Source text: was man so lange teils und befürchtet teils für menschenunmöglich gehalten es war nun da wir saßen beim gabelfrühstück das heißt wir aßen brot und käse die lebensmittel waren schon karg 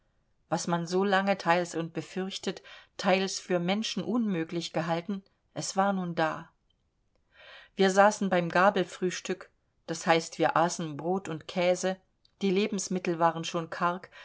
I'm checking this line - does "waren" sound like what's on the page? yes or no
yes